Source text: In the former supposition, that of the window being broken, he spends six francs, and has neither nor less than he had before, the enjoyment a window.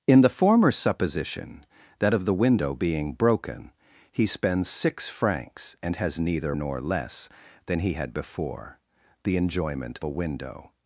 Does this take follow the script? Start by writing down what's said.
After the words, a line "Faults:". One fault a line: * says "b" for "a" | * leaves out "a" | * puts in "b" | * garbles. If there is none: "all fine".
In the former supposition, that of the window being broken, he spends six francs, and has neither nor less than he had before, the enjoyment a window.
Faults:
all fine